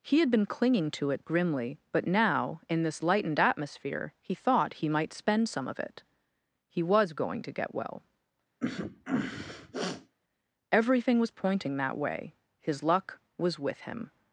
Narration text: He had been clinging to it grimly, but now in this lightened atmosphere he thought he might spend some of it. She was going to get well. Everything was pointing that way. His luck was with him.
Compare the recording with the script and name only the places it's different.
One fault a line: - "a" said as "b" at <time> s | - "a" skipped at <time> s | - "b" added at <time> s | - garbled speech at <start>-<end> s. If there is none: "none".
- "She" said as "He" at 6.7 s